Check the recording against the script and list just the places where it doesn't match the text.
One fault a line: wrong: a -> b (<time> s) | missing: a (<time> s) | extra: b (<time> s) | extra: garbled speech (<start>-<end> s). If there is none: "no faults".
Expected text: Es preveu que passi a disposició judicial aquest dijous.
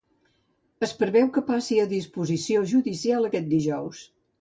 no faults